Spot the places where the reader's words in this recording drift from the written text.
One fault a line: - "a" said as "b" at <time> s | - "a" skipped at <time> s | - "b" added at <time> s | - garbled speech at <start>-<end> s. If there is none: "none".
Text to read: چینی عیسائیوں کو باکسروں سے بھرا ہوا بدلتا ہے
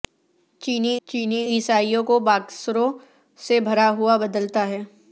- "چینی" added at 1.1 s